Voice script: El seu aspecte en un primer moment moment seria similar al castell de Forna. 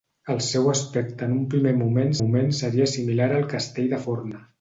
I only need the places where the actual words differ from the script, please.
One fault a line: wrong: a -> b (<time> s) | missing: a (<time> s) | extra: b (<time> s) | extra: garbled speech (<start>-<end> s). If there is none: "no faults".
no faults